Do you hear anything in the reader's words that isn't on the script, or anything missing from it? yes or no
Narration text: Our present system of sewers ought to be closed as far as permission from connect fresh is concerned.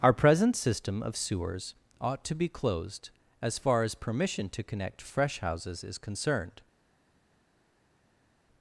yes